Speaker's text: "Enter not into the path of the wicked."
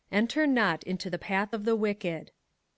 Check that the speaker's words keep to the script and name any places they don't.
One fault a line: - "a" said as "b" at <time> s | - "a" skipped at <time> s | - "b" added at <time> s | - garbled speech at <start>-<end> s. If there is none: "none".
none